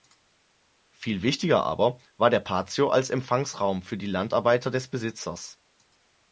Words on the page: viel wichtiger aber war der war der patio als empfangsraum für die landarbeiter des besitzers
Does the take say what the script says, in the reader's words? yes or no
no